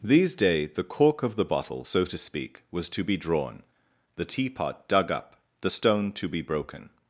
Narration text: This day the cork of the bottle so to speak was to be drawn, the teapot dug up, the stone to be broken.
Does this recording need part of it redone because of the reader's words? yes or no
yes